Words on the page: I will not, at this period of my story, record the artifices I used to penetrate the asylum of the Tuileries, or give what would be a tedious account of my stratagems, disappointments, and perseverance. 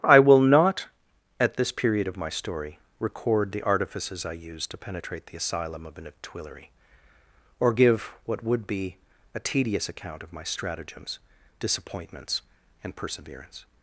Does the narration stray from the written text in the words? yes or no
yes